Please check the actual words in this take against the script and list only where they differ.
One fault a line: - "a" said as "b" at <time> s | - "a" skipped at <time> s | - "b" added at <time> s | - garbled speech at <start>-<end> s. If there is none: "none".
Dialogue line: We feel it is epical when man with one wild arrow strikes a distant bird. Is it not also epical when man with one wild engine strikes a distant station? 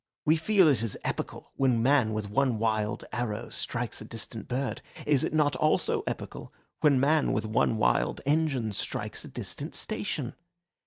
none